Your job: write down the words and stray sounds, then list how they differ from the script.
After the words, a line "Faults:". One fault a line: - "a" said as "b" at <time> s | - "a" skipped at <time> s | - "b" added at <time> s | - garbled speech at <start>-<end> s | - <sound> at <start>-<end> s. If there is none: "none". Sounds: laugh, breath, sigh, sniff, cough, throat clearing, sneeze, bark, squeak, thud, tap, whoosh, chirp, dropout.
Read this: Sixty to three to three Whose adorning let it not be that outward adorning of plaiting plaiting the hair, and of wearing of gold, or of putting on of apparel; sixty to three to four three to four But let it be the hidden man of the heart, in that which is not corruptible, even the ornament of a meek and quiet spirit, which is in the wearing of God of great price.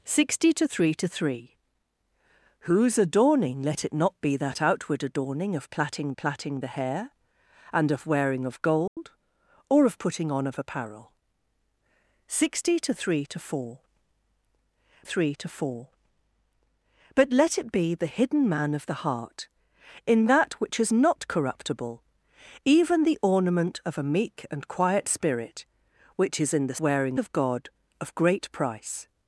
Sixty to three to three Whose adorning let it not be that outward adorning of plaiting plaiting the hair, and of wearing of gold, or of putting on of apparel; sixty to three to four three to four But let it be the hidden man of the heart, in that which is not corruptible, even the ornament of a meek and quiet spirit, which is in the wearing of God of great price.
Faults:
- dropout at 8.9-9.0 s